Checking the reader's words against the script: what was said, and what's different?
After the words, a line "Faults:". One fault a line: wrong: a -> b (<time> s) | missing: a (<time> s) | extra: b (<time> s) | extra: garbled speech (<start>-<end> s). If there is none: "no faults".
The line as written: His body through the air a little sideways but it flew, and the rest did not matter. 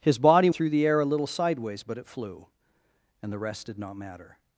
His body through the air a little sideways but it flew, and the rest did not matter.
Faults:
no faults